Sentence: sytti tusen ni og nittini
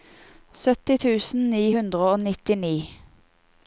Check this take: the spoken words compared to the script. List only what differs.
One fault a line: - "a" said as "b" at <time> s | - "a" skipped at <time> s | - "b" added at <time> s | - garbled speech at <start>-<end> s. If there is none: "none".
- "hundre" added at 1.7 s